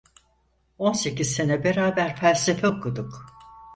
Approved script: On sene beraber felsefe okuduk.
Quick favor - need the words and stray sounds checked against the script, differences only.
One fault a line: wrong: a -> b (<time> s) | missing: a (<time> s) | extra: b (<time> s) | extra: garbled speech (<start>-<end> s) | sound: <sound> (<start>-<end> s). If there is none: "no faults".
extra: sekiz (0.9 s)